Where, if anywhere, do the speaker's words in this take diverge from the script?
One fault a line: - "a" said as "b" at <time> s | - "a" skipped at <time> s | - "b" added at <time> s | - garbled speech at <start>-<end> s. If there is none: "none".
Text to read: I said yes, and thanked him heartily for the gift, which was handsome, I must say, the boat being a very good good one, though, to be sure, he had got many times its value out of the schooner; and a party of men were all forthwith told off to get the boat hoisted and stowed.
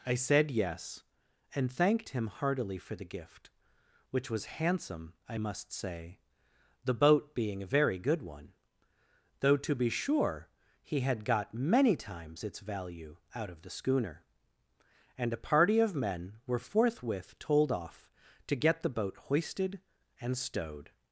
- "good" skipped at 8.2 s
- "all" skipped at 16.6 s